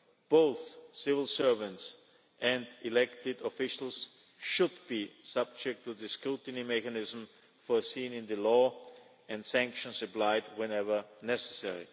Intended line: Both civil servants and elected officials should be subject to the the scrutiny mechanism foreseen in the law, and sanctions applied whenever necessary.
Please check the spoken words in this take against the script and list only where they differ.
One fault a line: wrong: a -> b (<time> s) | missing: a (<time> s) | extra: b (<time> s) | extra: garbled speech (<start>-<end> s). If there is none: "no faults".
missing: the (6.1 s)